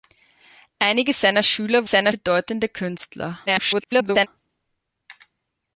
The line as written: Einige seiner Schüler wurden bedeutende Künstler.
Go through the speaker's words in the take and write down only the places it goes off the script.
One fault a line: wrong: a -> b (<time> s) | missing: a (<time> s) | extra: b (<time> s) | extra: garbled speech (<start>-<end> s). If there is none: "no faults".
wrong: wurden -> seiner (1.8 s)
extra: garbled speech (3.5-4.3 s)